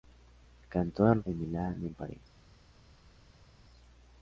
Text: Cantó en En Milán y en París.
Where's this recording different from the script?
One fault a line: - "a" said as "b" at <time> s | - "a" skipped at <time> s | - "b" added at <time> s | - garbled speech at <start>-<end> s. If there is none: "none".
none